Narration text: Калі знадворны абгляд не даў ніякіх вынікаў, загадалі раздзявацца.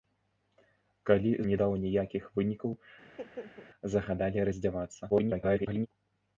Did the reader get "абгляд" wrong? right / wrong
wrong